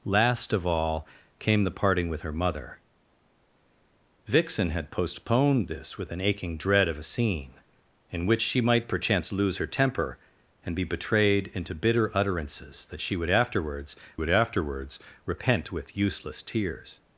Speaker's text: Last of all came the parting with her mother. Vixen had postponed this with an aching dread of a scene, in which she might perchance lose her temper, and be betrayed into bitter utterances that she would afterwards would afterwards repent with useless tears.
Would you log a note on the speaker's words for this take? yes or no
no